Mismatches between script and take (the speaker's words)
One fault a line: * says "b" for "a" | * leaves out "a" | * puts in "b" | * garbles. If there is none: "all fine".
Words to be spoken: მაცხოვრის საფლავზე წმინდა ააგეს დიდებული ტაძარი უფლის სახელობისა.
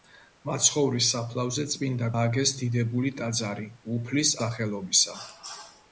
all fine